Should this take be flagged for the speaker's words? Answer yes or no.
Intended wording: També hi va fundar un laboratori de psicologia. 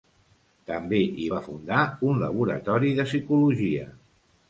no